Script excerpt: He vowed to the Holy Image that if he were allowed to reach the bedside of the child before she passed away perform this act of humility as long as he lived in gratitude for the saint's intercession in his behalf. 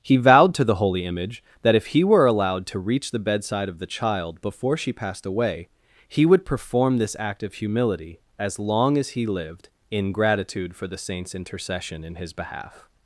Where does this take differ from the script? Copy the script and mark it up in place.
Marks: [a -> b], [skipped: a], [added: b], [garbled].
He vowed to the Holy Image that if he were allowed to reach the bedside of the child before she passed away [added: he would] perform this act of humility as long as he lived in gratitude for the saint's intercession in his behalf.